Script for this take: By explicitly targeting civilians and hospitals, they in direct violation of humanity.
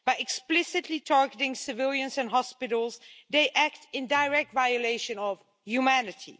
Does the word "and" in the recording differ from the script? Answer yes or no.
no